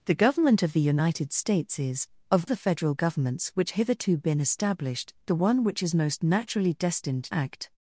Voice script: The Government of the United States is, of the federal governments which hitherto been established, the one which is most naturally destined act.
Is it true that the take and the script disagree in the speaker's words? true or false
false